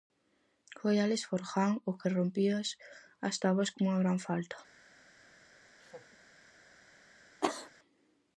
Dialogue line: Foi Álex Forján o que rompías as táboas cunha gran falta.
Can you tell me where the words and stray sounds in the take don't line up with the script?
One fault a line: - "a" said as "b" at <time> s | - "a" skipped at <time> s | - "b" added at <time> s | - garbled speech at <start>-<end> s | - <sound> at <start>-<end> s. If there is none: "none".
- laugh at 5.8-6.2 s
- cough at 7.4-7.7 s